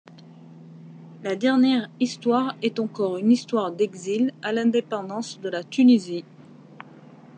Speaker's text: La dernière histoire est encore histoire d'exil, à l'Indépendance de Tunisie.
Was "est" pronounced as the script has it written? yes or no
yes